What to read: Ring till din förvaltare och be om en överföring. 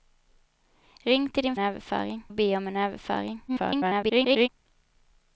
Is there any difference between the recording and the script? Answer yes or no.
yes